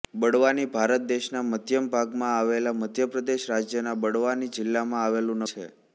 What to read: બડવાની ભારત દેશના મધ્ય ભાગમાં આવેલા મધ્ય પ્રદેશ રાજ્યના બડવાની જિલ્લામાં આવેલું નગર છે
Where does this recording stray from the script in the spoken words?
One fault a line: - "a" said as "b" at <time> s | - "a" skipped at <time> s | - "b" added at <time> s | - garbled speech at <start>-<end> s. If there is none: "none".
- "નગર" skipped at 5.4 s